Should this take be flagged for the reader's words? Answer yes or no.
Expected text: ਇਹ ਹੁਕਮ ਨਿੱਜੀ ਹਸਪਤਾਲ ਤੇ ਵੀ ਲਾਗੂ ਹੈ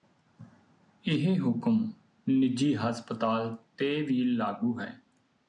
no